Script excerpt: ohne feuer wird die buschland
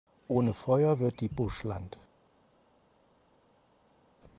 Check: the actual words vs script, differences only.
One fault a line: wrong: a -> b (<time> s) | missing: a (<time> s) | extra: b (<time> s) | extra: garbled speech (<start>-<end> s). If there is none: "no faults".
no faults